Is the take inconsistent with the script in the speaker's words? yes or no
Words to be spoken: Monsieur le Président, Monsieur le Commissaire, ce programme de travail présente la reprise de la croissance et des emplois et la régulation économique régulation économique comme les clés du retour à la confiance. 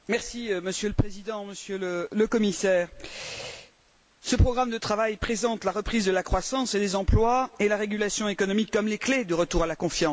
yes